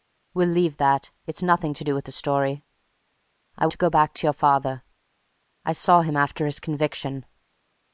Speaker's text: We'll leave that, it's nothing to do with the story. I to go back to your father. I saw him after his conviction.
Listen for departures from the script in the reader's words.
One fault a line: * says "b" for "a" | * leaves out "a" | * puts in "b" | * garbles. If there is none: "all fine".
all fine